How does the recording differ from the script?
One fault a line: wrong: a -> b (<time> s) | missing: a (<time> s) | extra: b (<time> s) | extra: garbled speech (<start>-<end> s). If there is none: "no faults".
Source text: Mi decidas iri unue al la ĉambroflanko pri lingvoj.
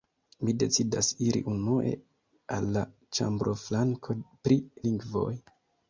no faults